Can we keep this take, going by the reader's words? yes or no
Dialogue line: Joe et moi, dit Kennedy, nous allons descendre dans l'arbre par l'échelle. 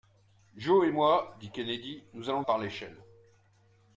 no